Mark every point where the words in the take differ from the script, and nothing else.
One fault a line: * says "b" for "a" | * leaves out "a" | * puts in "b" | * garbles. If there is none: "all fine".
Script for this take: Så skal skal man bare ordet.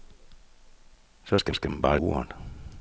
all fine